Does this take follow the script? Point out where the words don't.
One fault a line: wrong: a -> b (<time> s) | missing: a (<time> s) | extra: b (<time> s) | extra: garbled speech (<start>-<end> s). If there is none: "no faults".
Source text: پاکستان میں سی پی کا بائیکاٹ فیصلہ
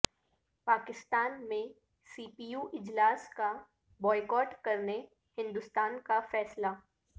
extra: یو اجلاس (2.5 s)
extra: کرنے ہندوستان کا (4.6 s)